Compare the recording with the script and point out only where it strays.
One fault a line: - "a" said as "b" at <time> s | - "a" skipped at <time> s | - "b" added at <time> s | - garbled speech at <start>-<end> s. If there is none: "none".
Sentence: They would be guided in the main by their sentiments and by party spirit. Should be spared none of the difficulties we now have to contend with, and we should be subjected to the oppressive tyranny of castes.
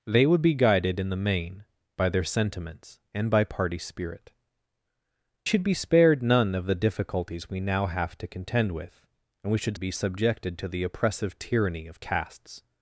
none